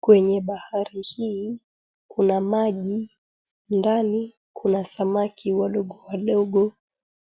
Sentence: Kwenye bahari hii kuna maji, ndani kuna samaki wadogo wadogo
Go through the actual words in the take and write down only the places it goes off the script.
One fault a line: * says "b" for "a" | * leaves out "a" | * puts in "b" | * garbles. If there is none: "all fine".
all fine